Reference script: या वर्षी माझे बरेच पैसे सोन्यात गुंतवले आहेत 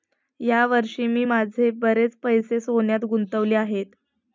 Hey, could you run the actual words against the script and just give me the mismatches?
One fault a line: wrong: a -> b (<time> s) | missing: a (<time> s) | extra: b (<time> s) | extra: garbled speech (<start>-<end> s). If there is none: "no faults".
extra: मी (1.1 s)